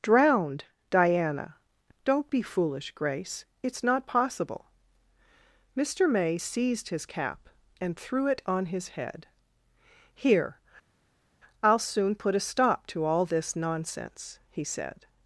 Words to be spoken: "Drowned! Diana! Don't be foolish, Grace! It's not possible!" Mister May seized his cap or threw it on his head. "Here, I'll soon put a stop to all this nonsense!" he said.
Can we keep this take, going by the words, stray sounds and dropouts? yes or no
no